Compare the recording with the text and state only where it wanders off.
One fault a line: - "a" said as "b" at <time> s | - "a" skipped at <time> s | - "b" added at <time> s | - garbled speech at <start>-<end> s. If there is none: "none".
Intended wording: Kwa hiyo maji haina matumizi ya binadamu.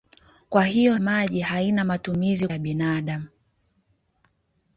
none